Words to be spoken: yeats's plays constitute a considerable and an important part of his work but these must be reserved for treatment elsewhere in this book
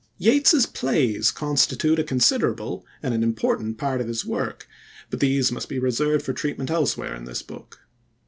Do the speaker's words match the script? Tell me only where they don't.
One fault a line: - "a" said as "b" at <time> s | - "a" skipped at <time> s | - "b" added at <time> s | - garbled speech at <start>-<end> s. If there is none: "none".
none